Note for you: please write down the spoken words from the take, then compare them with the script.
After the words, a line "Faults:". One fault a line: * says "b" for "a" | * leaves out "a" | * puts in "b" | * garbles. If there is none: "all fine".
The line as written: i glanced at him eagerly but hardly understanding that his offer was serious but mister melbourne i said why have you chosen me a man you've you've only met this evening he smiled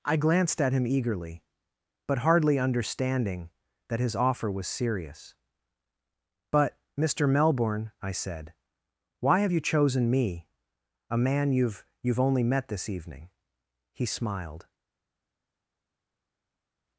i glanced at him eagerly but hardly understanding that his offer was serious but mister melbourne i said why have you chosen me a man you've you've only met this evening he smiled
Faults:
all fine